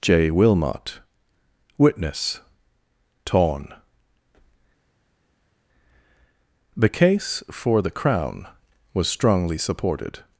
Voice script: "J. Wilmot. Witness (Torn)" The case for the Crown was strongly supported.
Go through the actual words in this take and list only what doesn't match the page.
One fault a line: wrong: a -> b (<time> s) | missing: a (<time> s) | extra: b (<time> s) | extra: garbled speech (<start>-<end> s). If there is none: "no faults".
no faults